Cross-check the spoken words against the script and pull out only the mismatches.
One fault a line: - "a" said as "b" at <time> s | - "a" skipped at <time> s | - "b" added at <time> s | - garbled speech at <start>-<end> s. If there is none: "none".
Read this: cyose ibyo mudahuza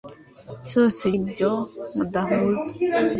none